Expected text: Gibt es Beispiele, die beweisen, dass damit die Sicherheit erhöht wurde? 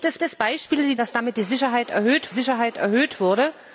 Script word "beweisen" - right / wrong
wrong